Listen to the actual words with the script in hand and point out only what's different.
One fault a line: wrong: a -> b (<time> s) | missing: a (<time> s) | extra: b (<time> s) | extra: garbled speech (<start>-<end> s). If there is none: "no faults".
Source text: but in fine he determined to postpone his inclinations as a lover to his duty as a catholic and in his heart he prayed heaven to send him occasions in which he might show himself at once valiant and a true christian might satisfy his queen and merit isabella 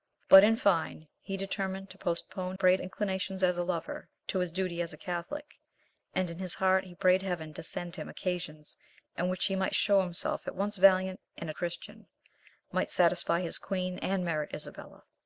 wrong: his -> prayed (2.5 s)
missing: true (11.5 s)